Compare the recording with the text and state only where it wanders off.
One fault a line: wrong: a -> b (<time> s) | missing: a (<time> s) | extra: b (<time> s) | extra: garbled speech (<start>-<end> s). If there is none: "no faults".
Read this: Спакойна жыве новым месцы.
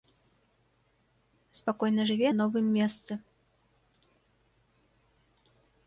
no faults